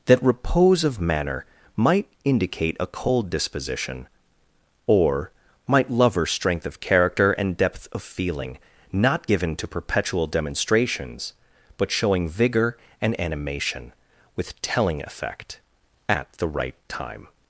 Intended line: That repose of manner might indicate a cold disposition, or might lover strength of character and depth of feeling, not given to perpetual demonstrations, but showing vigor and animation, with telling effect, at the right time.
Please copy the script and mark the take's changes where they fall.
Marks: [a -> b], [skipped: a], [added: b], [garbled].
That repose of manner might indicate a cold disposition, or might lover strength of character and depth of feeling, not given to perpetual demonstrations, but showing vigor and animation, with telling effect, at the right time.